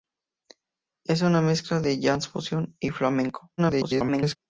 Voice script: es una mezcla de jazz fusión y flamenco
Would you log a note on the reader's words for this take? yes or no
yes